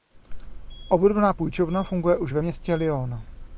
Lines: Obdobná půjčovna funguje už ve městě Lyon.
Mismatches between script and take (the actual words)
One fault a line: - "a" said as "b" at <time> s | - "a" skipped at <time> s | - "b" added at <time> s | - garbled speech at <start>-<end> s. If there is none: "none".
none